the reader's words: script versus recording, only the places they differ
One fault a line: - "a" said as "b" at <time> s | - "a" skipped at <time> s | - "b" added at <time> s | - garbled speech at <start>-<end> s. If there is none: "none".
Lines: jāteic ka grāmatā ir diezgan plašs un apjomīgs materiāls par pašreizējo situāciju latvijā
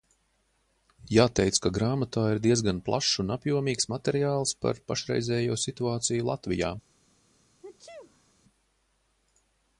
none